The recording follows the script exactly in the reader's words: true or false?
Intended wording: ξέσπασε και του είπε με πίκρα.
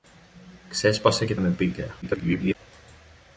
false